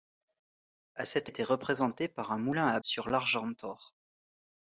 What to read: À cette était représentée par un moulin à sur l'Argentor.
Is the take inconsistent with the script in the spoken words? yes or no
no